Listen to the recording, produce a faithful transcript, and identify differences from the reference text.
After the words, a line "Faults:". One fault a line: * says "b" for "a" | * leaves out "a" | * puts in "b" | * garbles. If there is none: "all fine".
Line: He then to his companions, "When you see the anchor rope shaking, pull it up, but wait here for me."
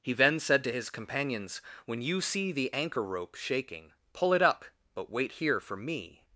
He then said to his companions, "When you see the anchor rope shaking, pull it up, but wait here for me."
Faults:
* puts in "said"